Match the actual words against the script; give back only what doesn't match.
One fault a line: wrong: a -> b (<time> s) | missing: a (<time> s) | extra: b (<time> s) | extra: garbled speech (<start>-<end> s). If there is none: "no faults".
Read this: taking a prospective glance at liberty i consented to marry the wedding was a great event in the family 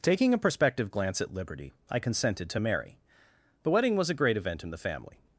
no faults